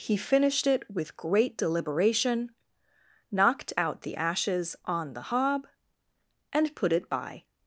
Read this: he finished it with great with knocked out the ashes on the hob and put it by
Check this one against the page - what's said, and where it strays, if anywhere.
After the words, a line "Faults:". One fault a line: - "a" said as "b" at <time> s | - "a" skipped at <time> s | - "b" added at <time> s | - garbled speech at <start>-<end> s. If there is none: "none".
he finished it with great deliberation knocked out the ashes on the hob and put it by
Faults:
- "with" said as "deliberation" at 1.6 s